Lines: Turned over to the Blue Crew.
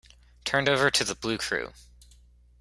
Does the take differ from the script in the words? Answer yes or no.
no